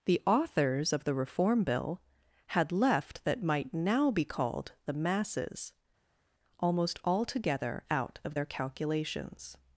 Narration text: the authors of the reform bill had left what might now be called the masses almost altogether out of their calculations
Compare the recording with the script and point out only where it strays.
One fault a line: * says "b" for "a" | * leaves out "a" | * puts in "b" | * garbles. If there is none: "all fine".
* says "that" for "what"